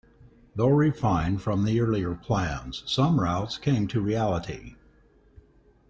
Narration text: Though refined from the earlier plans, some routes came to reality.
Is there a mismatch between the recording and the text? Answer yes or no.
no